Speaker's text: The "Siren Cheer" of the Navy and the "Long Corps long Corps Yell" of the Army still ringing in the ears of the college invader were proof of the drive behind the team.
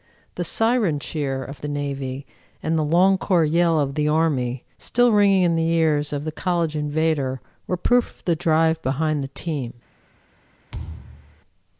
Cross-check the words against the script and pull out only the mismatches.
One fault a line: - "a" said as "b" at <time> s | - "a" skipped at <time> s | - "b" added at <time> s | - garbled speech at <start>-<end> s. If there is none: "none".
- "long Corps" skipped at 3.4 s